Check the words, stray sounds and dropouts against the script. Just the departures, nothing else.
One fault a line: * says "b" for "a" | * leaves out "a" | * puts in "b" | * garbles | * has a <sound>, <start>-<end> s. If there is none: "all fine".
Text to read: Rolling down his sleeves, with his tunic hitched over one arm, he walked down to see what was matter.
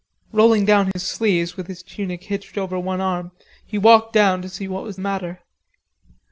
* has a dropout, 0.9-1.0 s